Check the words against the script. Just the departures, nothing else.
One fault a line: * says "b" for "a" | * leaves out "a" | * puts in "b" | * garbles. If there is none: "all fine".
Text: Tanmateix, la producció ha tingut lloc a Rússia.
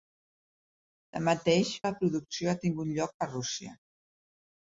all fine